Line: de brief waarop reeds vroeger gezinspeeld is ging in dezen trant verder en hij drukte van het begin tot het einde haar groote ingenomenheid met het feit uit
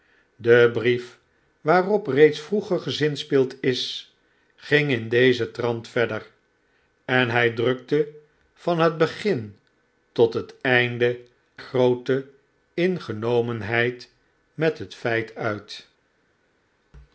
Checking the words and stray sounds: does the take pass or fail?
fail